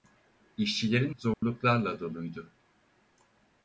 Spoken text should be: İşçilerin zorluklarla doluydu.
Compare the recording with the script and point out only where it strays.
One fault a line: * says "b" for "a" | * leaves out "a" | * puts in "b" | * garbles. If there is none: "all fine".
all fine